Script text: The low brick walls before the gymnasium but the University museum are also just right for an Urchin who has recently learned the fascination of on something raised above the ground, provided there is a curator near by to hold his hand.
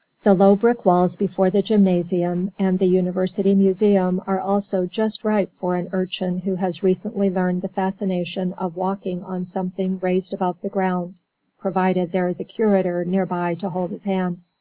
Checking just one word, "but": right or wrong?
wrong